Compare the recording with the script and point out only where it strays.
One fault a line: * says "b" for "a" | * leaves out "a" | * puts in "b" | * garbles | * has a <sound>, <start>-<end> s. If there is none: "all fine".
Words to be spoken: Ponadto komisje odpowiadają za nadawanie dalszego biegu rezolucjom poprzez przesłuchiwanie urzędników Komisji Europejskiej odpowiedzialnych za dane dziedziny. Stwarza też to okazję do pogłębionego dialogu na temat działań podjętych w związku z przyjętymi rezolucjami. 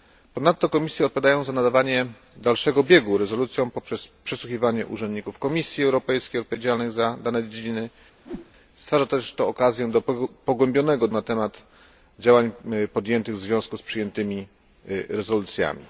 * has a whoosh, 8.2-8.5 s
* leaves out "dialogu"